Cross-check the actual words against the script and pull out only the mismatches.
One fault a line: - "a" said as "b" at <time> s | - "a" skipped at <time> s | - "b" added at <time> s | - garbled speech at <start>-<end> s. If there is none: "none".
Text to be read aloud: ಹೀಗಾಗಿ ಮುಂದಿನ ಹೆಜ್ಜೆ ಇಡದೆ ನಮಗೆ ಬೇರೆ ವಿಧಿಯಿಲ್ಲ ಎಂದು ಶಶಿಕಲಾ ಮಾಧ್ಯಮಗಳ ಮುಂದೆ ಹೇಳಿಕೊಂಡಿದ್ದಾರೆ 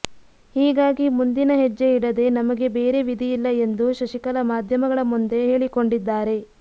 none